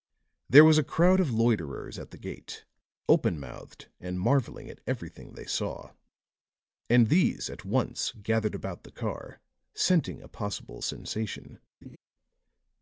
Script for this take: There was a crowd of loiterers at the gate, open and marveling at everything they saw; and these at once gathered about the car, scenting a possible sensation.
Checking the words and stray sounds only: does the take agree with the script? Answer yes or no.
no